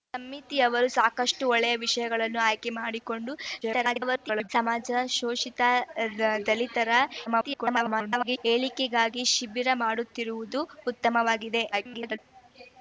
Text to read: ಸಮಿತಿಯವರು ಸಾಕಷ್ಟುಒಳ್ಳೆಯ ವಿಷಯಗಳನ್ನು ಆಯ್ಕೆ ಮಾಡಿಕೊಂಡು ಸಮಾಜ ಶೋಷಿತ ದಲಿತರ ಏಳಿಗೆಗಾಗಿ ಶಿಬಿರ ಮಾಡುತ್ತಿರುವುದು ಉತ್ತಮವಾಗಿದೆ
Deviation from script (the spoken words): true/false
true